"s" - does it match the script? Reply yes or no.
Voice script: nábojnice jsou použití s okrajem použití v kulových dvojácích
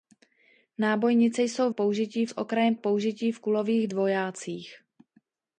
yes